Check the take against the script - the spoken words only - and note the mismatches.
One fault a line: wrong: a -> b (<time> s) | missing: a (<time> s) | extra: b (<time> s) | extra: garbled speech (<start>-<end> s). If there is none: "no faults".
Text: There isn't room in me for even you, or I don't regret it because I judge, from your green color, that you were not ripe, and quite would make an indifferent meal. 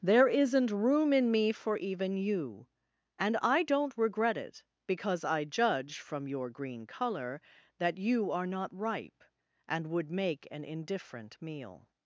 wrong: or -> and (3.2 s)
wrong: were -> are (8.3 s)
missing: quite (9.9 s)